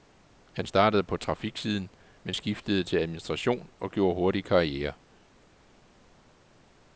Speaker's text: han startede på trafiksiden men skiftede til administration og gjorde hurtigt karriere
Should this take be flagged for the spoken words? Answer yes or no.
no